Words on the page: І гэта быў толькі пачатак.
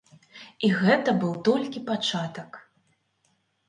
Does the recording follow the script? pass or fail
pass